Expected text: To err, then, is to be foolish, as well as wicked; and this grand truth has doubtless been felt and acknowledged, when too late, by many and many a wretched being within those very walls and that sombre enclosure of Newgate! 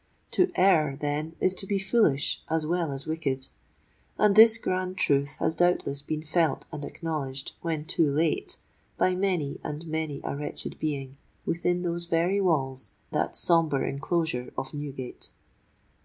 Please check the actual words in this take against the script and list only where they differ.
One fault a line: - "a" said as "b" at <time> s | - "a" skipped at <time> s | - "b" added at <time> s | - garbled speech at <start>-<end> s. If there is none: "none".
- "and" skipped at 12.9 s